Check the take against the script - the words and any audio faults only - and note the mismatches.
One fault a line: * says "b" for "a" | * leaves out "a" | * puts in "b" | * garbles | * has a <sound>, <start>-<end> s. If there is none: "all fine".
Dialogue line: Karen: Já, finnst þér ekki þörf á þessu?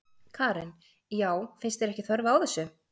all fine